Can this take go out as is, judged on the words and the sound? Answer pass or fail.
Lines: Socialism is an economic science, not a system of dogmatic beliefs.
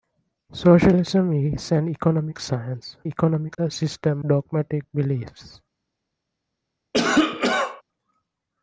fail